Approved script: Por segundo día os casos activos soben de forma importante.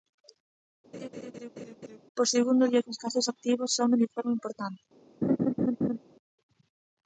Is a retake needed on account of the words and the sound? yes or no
yes